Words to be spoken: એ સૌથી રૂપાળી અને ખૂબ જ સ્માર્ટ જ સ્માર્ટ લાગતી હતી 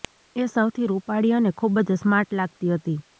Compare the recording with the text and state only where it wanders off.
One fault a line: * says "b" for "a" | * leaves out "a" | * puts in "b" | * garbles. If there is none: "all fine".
* leaves out "જ સ્માર્ટ"